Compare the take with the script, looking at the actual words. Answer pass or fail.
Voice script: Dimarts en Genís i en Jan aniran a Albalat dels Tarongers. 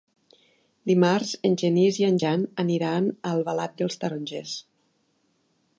pass